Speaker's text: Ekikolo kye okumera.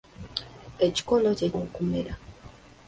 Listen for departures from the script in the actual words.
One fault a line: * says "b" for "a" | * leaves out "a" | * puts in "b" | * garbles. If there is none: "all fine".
all fine